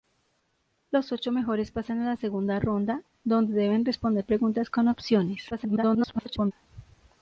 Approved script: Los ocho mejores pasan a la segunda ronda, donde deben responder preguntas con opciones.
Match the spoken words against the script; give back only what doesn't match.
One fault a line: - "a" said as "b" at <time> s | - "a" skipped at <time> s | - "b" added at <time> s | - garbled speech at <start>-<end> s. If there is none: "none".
- garbled speech at 5.5-6.5 s